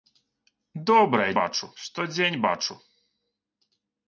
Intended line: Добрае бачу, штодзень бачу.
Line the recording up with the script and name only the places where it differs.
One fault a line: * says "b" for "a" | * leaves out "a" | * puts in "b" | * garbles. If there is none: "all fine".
all fine